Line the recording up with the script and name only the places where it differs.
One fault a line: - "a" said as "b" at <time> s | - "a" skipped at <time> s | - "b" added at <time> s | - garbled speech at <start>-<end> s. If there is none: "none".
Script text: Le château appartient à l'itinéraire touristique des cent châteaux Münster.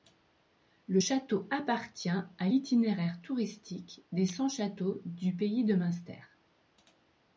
- "du Pays de" added at 5.1 s